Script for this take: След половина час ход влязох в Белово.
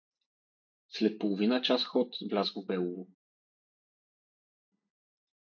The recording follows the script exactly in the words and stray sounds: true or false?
true